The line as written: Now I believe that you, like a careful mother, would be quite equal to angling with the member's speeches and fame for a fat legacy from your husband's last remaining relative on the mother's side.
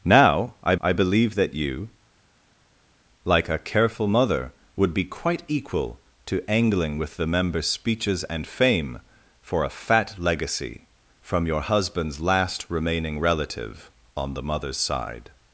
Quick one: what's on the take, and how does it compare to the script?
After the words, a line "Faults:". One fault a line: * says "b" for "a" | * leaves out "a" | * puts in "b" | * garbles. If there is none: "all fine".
Now I I believe that you, like a careful mother, would be quite equal to angling with the member's speeches and fame for a fat legacy from your husband's last remaining relative on the mother's side.
Faults:
* puts in "I"